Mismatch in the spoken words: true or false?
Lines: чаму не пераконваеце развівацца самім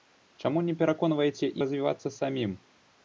false